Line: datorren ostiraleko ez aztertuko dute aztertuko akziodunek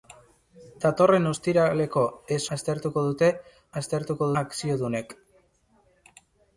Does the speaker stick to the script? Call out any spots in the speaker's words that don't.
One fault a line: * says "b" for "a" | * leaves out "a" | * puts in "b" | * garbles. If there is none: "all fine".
all fine